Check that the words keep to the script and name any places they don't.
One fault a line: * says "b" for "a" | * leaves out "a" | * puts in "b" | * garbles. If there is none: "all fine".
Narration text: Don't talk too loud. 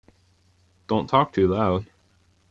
all fine